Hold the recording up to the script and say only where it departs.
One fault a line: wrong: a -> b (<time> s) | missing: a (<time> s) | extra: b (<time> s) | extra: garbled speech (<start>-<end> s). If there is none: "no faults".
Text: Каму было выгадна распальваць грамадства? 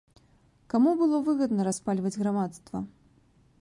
no faults